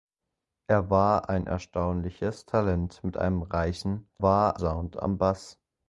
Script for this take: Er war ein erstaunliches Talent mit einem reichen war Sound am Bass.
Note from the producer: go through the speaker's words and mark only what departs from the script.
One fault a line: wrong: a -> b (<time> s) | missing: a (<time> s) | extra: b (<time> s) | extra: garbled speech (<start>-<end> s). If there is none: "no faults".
no faults